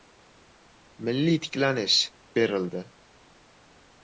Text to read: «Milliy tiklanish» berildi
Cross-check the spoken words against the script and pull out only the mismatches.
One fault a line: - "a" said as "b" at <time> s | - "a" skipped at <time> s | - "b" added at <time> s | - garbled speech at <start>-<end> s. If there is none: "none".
none